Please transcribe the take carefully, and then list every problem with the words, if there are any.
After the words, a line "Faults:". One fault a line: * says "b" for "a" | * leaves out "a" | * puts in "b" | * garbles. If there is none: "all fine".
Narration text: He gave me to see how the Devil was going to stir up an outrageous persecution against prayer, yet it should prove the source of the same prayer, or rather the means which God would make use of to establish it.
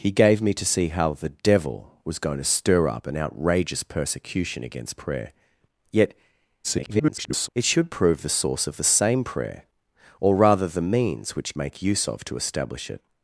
He gave me to see how the Devil was going to stir up an outrageous persecution against prayer, yet [garbled] it should prove the source of the same prayer, or rather the means which Make use of to establish it.
Faults:
* garbles
* leaves out "God would"